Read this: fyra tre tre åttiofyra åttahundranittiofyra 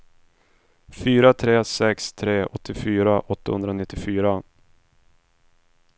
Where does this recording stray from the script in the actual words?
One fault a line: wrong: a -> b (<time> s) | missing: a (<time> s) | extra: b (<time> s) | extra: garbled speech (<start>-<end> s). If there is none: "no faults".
extra: sex (1.6 s)